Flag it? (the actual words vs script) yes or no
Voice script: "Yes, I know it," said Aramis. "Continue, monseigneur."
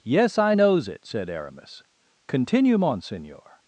yes